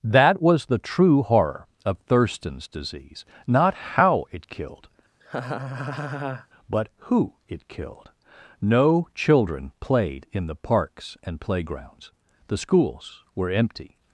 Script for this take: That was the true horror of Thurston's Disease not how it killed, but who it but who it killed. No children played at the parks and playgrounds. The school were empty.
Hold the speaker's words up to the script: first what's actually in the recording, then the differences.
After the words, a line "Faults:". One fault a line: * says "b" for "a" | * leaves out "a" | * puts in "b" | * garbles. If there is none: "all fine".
That was the true horror of Thurston's Disease not how it killed, but who it killed. No children played in the parks and playgrounds. The schools were empty.
Faults:
* leaves out "but who it"
* says "in" for "at"
* says "schools" for "school"